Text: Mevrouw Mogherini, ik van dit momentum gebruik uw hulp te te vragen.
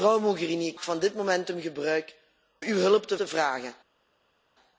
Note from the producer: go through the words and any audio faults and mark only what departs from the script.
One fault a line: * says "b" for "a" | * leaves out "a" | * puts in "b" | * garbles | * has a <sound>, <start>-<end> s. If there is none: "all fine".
all fine